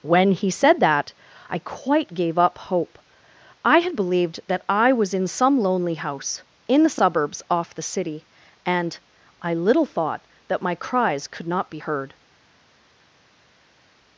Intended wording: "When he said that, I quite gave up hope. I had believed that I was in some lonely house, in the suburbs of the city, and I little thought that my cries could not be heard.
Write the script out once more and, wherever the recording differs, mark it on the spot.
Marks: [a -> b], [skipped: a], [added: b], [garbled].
"When he said that, I quite gave up hope. I had believed that I was in some lonely house, in the suburbs [of -> off] the city, and I little thought that my cries could not be heard.